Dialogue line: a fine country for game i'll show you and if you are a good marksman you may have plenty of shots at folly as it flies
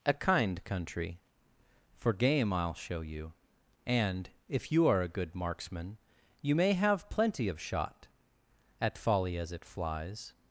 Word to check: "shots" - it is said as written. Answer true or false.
false